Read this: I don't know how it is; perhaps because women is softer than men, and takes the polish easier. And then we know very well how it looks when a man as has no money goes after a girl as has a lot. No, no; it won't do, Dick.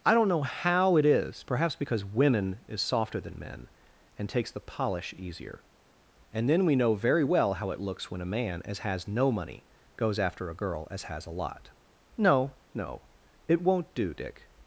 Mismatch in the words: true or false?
false